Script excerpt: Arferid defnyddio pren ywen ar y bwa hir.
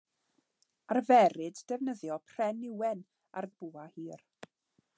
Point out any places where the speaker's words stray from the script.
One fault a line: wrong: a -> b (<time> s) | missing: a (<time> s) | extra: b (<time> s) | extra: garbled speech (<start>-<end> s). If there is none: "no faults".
no faults